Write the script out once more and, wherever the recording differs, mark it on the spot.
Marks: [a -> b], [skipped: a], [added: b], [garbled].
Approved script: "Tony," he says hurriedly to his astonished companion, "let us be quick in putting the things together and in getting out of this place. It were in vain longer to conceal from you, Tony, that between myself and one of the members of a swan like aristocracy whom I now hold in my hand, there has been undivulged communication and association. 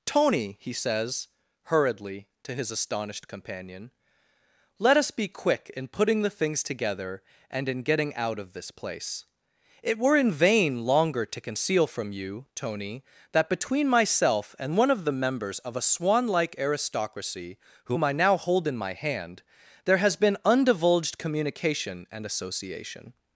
"Tony," he says hurriedly to his astonished companion, "let us be quick in putting the things together and in getting out of this place. It were in vain longer to conceal from you, Tony, that between myself and one of the members of a swan like aristocracy whom I now hold in my hand, there has been undivulged communication and association.